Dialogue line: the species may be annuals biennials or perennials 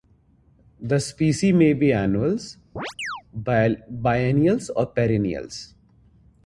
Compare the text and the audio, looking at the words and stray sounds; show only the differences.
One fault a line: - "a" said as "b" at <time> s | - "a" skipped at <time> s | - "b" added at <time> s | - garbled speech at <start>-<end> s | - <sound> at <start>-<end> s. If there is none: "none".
- chirp at 2.8-3.2 s